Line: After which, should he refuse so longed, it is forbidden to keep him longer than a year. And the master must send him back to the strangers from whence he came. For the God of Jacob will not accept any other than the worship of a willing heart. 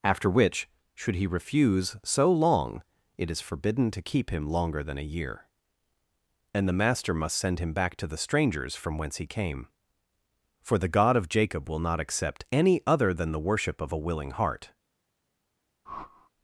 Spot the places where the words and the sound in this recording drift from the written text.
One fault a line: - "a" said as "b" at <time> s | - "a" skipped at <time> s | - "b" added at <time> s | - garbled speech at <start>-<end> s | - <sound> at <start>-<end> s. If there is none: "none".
- "longed" said as "long" at 2.3 s
- whoosh at 15.9-16.3 s